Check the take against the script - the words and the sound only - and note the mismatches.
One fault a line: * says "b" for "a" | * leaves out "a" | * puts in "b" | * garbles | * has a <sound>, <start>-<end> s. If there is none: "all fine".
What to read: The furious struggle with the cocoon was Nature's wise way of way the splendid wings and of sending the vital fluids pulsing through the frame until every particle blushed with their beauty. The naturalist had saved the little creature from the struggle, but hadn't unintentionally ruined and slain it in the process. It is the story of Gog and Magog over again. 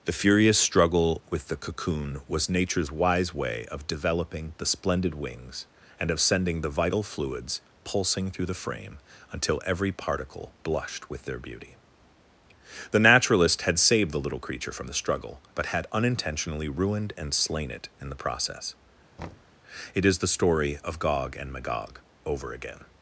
* says "developing" for "way"
* says "had" for "hadn't"
* has a thud, 19.2-19.6 s